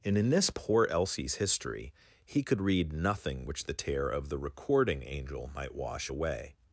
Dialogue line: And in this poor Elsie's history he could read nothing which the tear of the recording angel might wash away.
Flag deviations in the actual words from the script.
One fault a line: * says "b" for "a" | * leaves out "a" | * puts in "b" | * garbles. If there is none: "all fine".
all fine